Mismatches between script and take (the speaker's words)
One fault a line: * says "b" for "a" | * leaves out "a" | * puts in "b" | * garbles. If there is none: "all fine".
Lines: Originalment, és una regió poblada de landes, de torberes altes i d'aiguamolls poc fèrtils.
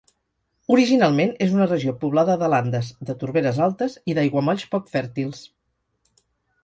all fine